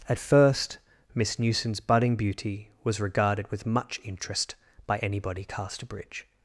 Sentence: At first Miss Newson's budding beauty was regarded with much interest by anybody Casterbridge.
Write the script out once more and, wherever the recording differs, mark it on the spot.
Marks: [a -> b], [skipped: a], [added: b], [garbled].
At first Miss Newson's budding beauty was regarded with much interest by anybody Casterbridge.